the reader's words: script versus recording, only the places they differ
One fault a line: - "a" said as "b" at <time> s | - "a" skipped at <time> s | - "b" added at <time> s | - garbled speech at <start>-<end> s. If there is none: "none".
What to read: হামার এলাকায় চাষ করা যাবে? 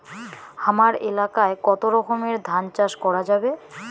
- "কতো রকমের ধান" added at 1.6 s